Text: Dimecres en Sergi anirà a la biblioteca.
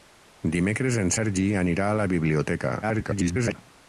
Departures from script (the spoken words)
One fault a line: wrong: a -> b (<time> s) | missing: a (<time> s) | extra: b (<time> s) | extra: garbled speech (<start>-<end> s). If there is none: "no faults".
extra: garbled speech (2.8-3.6 s)